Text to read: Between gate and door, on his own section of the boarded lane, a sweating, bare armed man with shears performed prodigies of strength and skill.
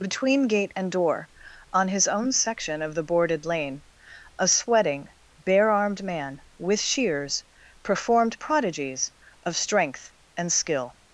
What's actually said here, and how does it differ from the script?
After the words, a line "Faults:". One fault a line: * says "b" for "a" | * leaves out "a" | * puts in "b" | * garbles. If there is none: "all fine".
Between gate and door, on his own section of the boarded lane, a sweating, bare armed man with shears performed prodigies of strength and skill.
Faults:
all fine